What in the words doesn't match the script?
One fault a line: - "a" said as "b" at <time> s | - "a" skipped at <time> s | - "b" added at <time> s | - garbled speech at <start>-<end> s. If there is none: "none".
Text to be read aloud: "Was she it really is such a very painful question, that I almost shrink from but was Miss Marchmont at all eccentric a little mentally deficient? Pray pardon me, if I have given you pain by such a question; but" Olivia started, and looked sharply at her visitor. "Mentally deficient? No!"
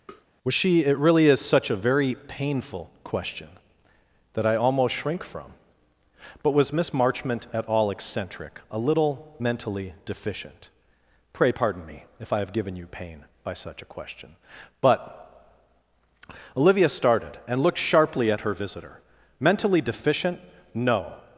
none